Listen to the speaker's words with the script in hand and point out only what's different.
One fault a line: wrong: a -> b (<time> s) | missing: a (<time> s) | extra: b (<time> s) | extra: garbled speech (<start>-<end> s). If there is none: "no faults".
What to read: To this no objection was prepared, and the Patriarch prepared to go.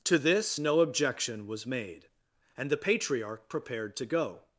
wrong: prepared -> made (1.7 s)